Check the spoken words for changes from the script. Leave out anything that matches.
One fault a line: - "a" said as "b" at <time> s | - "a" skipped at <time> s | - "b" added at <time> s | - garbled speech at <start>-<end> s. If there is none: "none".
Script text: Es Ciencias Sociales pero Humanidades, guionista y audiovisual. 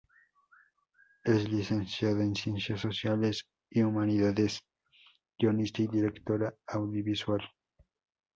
- "Licenciada en" added at 1.5 s
- "pero" said as "y" at 3.7 s
- "directora" added at 5.9 s